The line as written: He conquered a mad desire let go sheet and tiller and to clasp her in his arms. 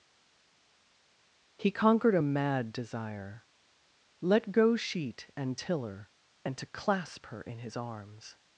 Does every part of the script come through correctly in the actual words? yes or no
yes